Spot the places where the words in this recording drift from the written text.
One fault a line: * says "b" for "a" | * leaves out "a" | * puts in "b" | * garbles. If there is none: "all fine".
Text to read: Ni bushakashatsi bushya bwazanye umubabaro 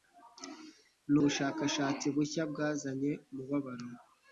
all fine